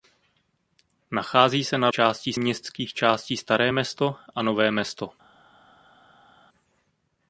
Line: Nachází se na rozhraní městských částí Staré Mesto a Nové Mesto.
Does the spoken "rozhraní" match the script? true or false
false